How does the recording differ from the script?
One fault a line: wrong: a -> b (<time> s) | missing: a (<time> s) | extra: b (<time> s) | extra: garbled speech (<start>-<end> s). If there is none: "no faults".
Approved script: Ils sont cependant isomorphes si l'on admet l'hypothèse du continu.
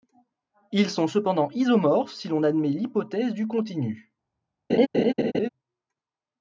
no faults